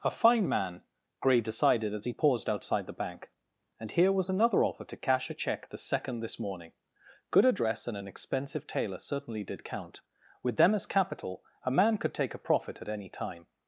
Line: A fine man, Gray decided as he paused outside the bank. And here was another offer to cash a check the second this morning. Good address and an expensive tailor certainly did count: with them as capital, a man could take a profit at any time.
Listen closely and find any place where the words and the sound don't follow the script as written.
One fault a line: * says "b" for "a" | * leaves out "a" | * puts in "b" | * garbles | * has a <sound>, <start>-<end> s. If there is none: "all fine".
all fine